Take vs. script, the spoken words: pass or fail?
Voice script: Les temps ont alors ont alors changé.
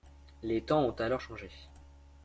fail